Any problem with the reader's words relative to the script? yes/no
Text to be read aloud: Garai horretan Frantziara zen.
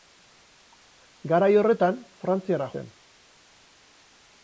no